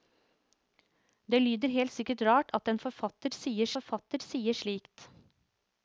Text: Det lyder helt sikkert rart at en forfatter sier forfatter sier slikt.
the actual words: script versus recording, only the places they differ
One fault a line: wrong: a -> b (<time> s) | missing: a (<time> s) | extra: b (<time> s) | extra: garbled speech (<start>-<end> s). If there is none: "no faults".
no faults